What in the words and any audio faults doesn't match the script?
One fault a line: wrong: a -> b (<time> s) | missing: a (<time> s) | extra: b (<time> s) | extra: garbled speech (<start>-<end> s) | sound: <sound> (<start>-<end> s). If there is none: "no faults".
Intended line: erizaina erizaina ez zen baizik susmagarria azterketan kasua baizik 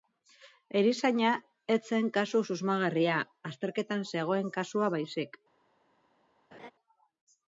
missing: erizaina (1.3 s)
wrong: baizik -> kasu (2.1 s)
extra: zegoen (4.2 s)
sound: laugh (6.5-6.7 s)